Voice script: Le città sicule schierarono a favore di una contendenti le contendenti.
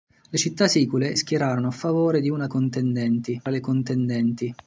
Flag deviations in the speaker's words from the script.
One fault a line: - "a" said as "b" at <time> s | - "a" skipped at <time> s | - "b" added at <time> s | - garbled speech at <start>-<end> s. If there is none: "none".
none